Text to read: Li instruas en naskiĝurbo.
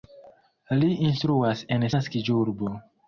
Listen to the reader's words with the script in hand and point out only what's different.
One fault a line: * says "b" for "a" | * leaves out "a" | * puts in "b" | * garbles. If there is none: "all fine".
all fine